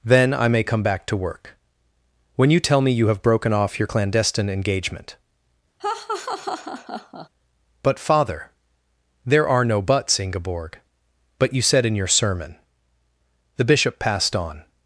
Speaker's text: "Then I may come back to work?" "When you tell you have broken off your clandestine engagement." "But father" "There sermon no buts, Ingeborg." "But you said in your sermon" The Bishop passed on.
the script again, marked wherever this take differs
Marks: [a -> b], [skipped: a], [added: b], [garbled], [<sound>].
"Then I may come back to work?" "When you tell [added: me] you have broken off your clandestine engagement." [laugh] "But father" "There [sermon -> are] no buts, Ingeborg." "But you said in your sermon" The Bishop passed on.